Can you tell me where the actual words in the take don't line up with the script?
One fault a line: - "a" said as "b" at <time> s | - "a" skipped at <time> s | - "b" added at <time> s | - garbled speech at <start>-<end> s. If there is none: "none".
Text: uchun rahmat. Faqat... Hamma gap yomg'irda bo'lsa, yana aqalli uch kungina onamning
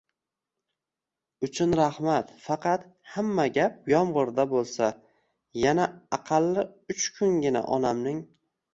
none